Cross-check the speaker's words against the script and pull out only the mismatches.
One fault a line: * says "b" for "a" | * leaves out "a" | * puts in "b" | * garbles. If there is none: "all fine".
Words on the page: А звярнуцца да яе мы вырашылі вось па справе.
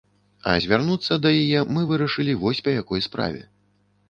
* puts in "якой"